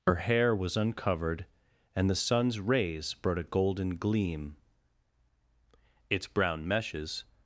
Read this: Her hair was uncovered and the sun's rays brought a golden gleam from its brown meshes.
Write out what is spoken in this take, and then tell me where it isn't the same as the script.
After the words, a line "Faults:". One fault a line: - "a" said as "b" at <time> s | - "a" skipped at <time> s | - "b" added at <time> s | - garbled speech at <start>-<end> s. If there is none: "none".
Her hair was uncovered and the sun's rays brought a golden gleam its brown meshes.
Faults:
- "from" skipped at 4.6 s